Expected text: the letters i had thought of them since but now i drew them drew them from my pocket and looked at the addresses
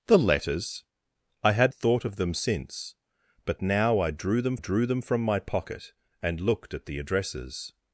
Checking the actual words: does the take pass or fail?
pass